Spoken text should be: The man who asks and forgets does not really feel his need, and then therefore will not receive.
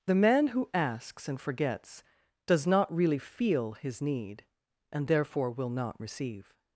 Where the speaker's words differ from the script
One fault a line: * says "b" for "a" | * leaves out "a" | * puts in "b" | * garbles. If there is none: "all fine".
* leaves out "then"